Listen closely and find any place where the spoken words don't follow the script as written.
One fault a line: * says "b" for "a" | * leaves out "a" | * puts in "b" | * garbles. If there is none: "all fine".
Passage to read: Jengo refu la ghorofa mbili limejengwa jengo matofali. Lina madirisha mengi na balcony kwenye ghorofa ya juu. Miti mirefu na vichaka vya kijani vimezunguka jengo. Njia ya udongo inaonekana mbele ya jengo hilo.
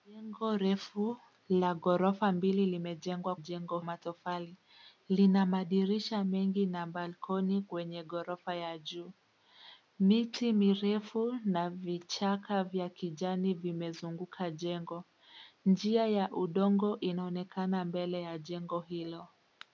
all fine